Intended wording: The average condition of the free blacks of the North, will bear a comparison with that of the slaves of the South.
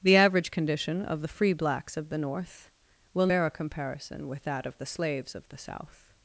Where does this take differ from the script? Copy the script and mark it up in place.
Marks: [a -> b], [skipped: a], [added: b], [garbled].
The average condition of the free blacks of the North, will bear a comparison with that of the slaves of the South.